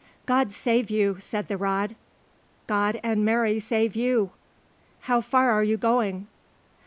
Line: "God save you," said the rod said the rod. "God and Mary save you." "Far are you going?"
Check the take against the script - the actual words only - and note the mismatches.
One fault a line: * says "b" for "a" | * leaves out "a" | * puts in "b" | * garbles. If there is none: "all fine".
* leaves out "said the rod"
* puts in "How"